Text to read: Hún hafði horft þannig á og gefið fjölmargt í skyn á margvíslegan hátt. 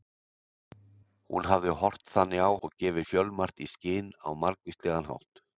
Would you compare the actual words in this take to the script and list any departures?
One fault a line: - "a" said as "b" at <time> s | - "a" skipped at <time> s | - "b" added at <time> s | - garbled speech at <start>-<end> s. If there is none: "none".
none